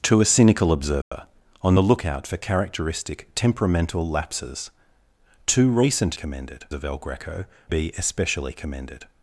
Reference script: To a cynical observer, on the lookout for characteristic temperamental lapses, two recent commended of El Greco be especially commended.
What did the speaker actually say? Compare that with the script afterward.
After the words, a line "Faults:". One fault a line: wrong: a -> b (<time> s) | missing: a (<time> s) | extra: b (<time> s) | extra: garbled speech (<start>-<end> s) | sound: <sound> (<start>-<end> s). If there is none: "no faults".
To a cynical observer, on the lookout for characteristic temperamental lapses, two recent commended of El Greco be especially commended.
Faults:
sound: dropout (1.0-1.1 s)